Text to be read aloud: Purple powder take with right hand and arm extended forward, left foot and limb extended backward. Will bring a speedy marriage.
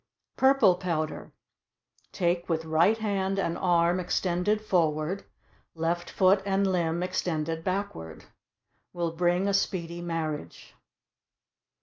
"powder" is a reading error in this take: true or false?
false